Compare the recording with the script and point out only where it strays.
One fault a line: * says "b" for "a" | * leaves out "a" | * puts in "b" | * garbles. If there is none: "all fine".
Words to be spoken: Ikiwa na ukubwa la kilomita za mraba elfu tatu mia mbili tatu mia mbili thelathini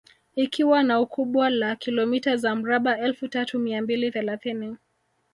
* leaves out "tatu mia mbili"